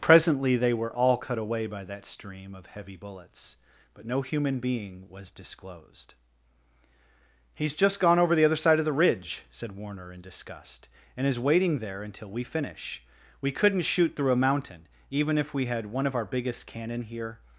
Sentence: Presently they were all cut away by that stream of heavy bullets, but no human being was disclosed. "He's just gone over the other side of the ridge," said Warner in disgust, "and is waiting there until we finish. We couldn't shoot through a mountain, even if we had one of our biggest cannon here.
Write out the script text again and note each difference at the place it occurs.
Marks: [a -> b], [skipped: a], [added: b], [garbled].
Presently they were all cut away by that stream of heavy bullets, but no human being was disclosed. "He's just gone over the other side of the ridge," said Warner in disgust, "and is waiting there until we finish. We couldn't shoot through a mountain, even if we had one of our biggest cannon here.